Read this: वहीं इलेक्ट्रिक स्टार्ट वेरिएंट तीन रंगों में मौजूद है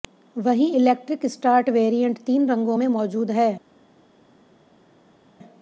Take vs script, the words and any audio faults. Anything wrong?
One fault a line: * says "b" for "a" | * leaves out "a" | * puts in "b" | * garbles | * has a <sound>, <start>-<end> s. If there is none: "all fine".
all fine